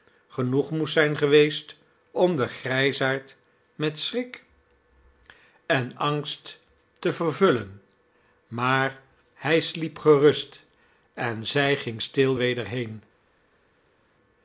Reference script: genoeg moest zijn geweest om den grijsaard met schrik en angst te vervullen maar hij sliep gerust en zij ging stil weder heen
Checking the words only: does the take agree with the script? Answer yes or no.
yes